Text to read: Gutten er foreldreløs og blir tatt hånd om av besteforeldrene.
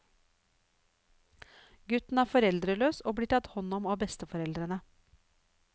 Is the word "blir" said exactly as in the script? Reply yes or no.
yes